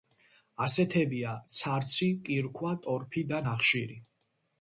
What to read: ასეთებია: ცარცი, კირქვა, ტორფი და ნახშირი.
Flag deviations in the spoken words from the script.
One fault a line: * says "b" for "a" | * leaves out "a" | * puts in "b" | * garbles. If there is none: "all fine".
all fine